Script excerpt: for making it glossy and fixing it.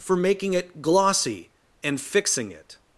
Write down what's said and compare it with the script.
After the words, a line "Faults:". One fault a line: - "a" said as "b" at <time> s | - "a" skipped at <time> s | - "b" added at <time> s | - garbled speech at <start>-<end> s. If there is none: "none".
for making it glossy and fixing it.
Faults:
none